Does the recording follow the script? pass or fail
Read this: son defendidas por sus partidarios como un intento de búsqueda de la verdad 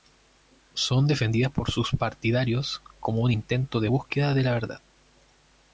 pass